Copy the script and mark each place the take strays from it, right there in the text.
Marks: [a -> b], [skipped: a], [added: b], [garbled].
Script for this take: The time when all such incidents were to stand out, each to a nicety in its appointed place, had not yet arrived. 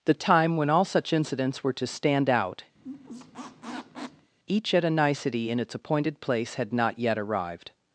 The time when all such incidents were to stand out, each [to -> at] a nicety in its appointed place, had not yet arrived.